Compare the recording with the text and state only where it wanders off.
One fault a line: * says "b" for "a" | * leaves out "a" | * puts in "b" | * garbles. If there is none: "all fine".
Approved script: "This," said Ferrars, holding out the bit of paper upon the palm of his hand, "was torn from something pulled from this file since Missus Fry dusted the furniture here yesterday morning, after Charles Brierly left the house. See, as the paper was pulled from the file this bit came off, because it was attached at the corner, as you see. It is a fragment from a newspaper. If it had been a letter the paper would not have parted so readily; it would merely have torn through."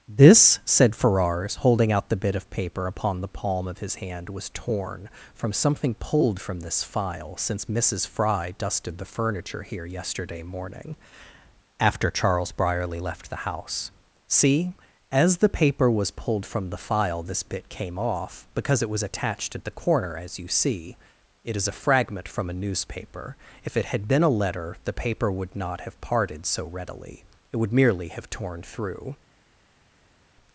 all fine